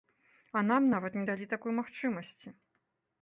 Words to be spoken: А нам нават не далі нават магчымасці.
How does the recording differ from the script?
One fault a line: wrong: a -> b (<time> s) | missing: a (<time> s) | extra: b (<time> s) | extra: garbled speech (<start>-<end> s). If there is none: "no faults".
wrong: нават -> такой (1.5 s)